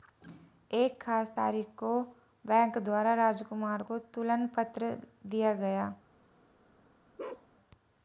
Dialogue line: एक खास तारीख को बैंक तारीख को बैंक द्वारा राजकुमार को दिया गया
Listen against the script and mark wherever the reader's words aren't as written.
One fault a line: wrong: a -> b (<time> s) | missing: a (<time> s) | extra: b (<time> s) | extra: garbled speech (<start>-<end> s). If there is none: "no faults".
missing: तारीख को बैंक (2.8 s)
extra: तुलन पत्र (4.1 s)